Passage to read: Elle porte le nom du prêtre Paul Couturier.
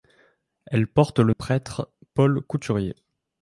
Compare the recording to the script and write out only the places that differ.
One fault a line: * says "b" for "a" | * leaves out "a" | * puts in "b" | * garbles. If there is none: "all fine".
* leaves out "nom du"